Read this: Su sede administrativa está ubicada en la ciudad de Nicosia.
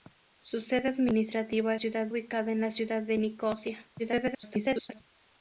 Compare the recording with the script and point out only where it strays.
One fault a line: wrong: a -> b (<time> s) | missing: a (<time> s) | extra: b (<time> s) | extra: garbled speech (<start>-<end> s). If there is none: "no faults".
wrong: está -> ciudad (1.8 s)
extra: garbled speech (4.0-5.0 s)